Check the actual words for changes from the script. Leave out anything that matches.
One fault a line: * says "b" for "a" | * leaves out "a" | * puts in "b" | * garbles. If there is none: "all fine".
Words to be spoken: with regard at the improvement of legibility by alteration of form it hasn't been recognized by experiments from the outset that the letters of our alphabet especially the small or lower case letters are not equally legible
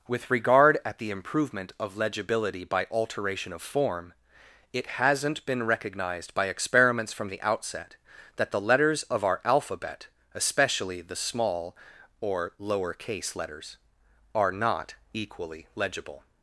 all fine